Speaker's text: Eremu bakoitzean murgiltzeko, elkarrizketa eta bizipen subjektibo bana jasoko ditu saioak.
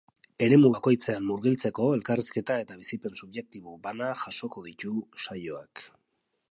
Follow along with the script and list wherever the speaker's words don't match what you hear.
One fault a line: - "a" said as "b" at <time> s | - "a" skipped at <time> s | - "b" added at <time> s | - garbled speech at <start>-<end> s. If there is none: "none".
none